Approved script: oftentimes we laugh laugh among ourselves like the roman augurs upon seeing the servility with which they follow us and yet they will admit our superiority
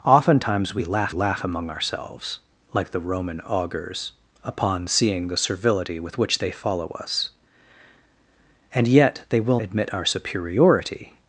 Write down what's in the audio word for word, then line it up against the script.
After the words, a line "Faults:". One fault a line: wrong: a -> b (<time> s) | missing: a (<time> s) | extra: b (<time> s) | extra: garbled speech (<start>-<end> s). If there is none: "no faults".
oftentimes we laugh laugh among ourselves like the roman augurs upon seeing the servility with which they follow us and yet they will admit our superiority
Faults:
no faults